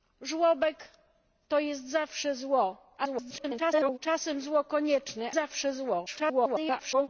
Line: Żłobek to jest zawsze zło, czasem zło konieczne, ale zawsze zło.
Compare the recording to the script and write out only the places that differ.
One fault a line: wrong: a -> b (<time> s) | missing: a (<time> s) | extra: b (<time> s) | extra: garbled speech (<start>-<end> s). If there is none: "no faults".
extra: garbled speech (3.0-4.0 s)
missing: ale (5.3 s)
extra: garbled speech (6.1-7.1 s)